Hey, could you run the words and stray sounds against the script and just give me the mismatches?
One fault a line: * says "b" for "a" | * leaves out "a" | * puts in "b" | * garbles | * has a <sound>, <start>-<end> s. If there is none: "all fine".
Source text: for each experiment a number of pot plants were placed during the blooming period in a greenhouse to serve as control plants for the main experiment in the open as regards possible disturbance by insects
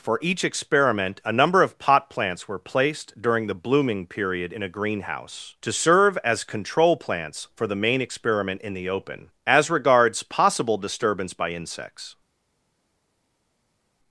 all fine